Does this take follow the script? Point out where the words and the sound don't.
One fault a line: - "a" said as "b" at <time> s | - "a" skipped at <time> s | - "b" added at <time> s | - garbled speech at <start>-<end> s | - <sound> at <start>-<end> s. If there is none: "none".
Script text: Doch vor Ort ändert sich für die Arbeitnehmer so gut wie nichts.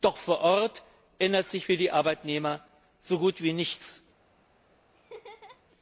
- laugh at 4.9-5.6 s